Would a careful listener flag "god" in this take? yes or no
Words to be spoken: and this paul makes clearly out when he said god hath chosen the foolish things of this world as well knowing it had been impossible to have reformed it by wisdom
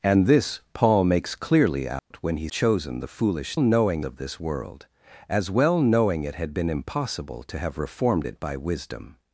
yes